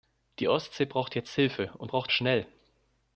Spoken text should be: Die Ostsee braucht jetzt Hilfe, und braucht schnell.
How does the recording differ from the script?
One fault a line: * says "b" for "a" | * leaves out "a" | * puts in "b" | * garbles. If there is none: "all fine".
all fine